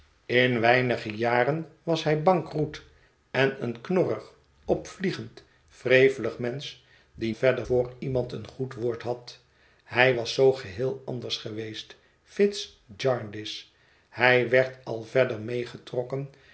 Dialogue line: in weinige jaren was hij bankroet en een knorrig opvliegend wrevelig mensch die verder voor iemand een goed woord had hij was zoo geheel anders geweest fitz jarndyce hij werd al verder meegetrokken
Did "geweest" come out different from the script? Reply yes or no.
no